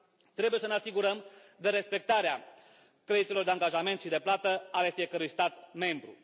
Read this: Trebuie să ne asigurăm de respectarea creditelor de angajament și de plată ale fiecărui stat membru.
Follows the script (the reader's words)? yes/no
yes